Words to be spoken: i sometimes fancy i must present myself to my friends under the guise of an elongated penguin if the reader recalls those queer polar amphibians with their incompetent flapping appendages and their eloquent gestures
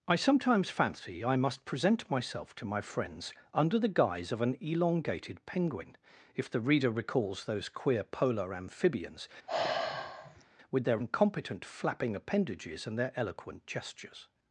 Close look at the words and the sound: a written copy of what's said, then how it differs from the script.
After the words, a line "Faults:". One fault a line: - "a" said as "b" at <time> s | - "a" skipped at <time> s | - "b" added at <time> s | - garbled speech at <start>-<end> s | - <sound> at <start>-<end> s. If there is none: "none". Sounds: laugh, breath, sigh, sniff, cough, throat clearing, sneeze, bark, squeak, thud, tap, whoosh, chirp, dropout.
i sometimes fancy i must present myself to my friends under the guise of an elongated penguin if the reader recalls those queer polar amphibians with their incompetent flapping appendages and their eloquent gestures
Faults:
- sigh at 9.5-10.5 s